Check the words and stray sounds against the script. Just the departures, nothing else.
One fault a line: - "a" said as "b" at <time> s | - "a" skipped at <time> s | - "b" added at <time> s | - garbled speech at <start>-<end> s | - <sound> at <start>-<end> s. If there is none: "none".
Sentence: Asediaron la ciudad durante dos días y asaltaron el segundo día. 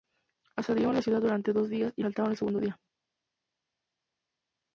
none